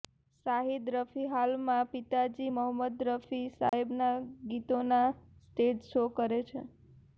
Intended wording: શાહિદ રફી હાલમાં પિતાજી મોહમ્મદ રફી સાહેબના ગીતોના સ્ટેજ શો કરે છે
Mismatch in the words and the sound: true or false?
true